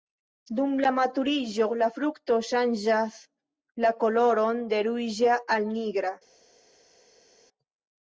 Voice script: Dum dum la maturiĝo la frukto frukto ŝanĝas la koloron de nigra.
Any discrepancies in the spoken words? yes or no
yes